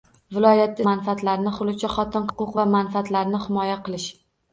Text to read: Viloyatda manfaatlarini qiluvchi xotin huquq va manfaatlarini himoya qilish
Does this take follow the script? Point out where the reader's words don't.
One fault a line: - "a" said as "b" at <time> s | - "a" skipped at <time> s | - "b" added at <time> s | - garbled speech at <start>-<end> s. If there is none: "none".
none